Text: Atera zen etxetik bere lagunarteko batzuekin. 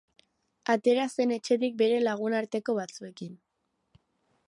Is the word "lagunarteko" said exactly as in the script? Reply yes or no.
yes